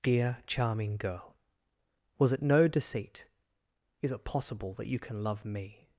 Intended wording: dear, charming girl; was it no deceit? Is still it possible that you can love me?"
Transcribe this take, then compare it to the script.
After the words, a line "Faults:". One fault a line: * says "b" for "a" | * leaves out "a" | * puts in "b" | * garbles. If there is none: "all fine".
dear, charming girl; was it no deceit? Is it possible that you can love me?"
Faults:
* leaves out "still"